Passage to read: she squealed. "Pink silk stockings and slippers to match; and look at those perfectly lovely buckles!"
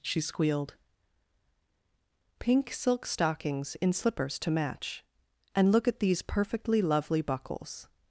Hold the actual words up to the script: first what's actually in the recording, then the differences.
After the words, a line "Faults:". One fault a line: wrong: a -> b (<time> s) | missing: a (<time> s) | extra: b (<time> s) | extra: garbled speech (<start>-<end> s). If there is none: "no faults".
she squealed. "Pink silk stockings in slippers to match; and look at these perfectly lovely buckles!"
Faults:
wrong: and -> in (3.8 s)
wrong: those -> these (6.0 s)